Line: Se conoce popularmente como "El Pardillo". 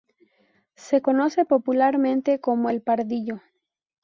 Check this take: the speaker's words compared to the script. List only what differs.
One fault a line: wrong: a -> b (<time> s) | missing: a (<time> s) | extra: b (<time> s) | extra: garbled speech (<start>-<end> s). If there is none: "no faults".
no faults